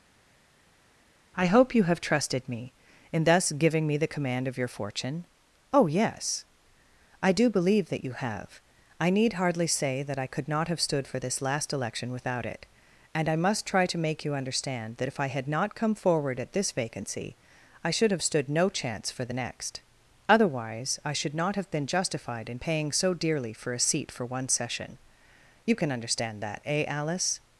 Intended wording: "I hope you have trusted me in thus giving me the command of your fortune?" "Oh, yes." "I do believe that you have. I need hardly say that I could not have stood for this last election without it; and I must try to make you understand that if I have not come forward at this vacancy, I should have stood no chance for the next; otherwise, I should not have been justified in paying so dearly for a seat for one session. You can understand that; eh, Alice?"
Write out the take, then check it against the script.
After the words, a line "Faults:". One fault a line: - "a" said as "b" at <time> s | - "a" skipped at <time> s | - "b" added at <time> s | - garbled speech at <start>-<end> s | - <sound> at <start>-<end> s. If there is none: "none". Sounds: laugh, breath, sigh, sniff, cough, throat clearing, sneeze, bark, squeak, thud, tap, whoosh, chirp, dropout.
"I hope you have trusted me in thus giving me the command of your fortune?" "Oh, yes." "I do believe that you have. I need hardly say that I could not have stood for this last election without it; and I must try to make you understand that if I had not come forward at this vacancy, I should have stood no chance for the next; otherwise, I should not have been justified in paying so dearly for a seat for one session. You can understand that; eh, Alice?"
Faults:
- "have" said as "had" at 15.3 s